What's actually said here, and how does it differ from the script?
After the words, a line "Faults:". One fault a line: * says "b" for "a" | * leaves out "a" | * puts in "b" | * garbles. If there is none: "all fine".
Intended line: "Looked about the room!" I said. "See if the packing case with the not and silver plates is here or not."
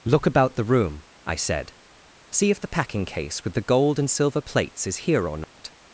"Look about the room!" I said. "See if the packing case with the gold and silver plates is here or not."
Faults:
* says "Look" for "Looked"
* says "gold" for "not"